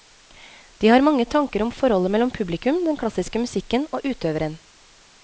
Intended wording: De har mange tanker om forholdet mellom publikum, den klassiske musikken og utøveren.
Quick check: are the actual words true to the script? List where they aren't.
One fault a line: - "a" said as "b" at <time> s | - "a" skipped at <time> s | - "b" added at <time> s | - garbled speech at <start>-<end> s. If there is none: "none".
none